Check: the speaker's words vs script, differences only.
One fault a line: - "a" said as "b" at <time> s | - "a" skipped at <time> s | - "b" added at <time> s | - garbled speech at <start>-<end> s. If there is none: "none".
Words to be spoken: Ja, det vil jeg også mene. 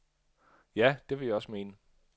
none